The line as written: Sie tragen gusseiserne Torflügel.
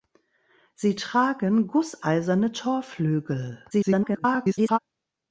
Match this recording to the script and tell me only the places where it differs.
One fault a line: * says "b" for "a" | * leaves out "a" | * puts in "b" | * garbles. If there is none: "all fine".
* garbles